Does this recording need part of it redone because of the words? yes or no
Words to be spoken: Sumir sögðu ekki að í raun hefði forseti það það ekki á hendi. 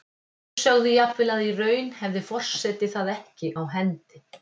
yes